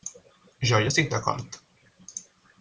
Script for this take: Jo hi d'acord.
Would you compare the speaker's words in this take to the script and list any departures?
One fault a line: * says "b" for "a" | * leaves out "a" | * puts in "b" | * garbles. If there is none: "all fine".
* puts in "estic"